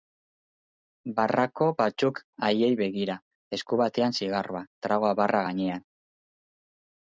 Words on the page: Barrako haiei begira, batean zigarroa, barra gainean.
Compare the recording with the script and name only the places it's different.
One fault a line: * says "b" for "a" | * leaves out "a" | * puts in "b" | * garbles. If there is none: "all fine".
* puts in "batzuk"
* puts in "esku"
* puts in "tragoa"